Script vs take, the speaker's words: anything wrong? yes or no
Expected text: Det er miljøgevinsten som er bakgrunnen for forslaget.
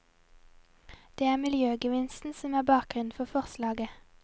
no